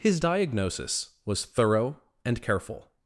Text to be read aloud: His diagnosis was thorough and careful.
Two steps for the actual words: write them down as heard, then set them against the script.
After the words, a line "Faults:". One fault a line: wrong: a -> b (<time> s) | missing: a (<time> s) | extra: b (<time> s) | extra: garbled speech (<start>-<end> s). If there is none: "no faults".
His diagnosis was thorough and careful.
Faults:
no faults